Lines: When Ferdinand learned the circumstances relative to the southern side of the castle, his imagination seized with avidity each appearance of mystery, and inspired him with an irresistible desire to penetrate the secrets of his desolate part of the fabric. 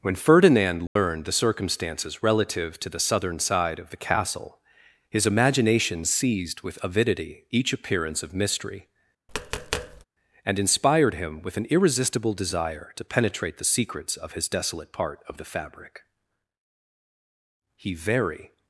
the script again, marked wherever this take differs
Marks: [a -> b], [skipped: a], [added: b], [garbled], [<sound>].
When Ferdinand learned [dropout] the circumstances relative to the southern side of the castle, his imagination seized with avidity each appearance of mystery, [tap] and inspired him with an irresistible desire to penetrate the secrets of his desolate part of the fabric. [added: He very]